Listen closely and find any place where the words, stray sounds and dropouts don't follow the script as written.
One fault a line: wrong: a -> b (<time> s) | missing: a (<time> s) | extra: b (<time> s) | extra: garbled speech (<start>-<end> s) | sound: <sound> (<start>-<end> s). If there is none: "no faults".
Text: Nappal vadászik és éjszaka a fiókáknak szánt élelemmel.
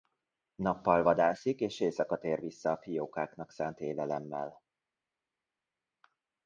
extra: tér vissza (2.2 s)